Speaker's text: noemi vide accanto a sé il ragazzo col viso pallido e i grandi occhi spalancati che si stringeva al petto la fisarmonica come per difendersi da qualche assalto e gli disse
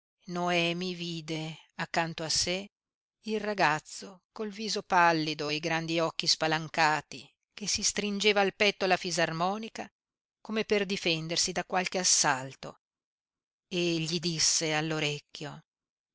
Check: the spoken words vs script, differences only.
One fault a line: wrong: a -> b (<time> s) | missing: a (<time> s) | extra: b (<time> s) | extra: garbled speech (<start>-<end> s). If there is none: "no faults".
no faults